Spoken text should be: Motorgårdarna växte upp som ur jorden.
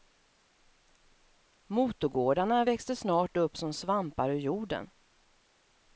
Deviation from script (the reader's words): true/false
true